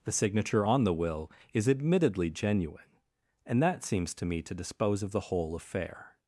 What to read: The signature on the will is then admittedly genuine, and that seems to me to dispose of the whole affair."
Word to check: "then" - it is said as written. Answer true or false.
false